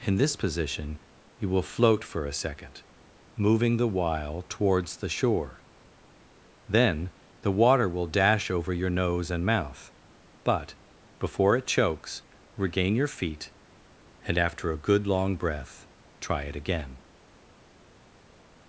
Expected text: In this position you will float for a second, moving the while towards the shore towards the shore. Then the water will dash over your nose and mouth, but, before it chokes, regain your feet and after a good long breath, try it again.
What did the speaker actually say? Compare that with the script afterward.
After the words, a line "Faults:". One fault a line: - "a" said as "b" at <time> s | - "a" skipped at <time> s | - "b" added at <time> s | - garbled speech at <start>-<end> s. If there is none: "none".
In this position you will float for a second, moving the while towards the shore. Then the water will dash over your nose and mouth, but, before it chokes, regain your feet and after a good long breath, try it again.
Faults:
- "towards the shore" skipped at 5.6 s